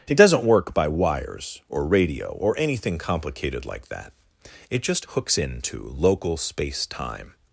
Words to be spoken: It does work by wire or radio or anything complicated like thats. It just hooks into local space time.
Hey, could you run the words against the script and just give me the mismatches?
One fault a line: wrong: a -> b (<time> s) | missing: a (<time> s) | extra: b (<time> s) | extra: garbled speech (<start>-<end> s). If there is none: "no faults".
wrong: does -> doesn't (0.1 s)
wrong: wire -> wires (0.9 s)
wrong: thats -> that (3.9 s)